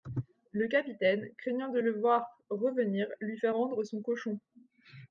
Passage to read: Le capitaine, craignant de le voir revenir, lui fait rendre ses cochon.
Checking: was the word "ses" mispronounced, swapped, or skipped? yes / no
yes